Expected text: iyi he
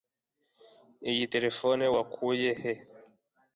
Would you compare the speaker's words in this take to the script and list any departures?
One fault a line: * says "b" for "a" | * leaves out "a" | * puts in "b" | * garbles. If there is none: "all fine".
* puts in "terefone wakuye"